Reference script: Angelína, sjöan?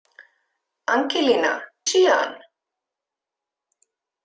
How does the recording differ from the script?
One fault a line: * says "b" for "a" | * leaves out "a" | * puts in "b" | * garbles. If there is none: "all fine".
all fine